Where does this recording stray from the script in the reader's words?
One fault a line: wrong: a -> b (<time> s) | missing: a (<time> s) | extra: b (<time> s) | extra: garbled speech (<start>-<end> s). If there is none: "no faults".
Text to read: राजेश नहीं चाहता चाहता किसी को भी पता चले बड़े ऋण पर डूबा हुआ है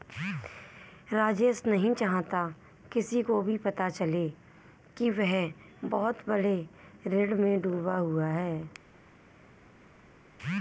missing: चाहता (2.5 s)
extra: कि वह बहुत (5.0 s)
wrong: पर -> में (7.4 s)